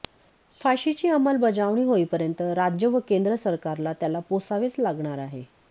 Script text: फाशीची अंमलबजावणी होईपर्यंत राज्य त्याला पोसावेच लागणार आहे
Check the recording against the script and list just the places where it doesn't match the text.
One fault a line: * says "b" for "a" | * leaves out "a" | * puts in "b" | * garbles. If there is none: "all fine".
* puts in "व केंद्र सरकारला"